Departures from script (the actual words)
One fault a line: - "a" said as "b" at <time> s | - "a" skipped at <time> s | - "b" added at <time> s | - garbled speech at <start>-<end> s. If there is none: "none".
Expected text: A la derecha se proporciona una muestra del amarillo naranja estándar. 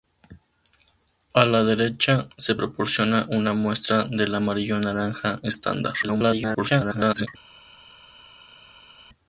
- garbled speech at 6.0-7.3 s